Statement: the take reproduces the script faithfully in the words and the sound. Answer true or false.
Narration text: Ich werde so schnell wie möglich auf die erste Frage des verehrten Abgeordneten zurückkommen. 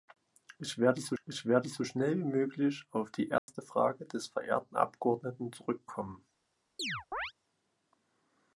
false